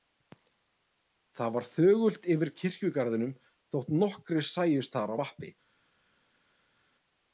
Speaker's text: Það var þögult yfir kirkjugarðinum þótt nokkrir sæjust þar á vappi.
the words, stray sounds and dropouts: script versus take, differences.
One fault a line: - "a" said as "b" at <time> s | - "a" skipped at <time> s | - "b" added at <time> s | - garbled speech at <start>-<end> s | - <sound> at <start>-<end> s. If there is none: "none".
none